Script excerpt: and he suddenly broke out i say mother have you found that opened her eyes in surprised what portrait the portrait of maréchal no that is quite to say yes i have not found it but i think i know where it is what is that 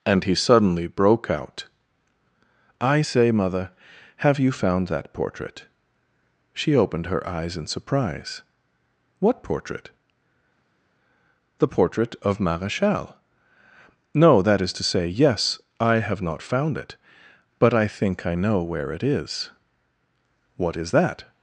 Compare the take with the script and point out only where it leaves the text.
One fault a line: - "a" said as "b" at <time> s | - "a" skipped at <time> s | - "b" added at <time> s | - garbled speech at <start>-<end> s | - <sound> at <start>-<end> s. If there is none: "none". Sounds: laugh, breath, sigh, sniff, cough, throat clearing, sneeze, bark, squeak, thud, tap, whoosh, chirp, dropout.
- "portrait she" added at 5.1 s
- "surprised" said as "surprise" at 7.7 s
- "quite" skipped at 14.7 s